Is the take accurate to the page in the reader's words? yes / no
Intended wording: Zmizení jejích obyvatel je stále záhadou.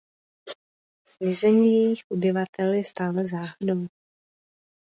yes